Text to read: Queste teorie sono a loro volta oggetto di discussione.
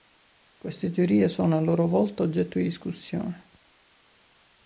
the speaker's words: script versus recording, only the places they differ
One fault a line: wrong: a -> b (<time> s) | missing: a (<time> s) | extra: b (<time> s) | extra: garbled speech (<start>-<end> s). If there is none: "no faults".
no faults